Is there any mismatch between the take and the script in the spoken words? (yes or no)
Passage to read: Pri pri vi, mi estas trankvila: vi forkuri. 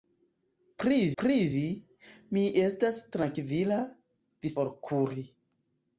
no